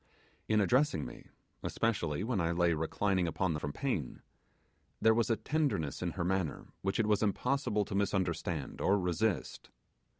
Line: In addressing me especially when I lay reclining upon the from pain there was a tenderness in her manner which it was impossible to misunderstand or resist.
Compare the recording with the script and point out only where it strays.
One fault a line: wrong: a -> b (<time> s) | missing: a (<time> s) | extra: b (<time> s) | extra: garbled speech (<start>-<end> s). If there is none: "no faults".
no faults